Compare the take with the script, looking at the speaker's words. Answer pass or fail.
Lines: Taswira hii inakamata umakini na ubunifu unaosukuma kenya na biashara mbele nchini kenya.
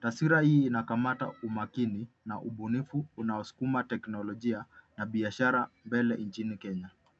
fail